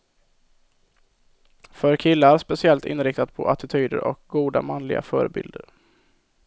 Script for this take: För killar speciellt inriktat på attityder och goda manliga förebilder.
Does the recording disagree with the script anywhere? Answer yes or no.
no